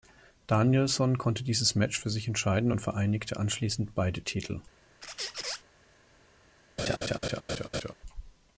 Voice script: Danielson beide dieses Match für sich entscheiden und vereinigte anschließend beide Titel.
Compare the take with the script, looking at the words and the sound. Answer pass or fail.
fail